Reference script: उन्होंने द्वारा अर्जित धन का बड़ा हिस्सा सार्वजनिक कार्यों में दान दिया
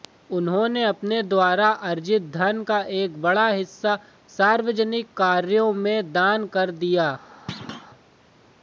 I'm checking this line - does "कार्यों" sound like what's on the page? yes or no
yes